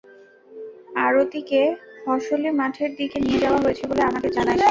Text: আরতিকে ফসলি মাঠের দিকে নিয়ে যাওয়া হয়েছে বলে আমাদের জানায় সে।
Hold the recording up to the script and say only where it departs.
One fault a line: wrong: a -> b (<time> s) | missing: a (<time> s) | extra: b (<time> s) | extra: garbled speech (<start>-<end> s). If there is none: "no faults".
no faults